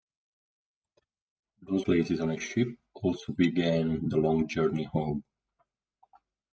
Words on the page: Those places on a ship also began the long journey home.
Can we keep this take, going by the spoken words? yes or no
yes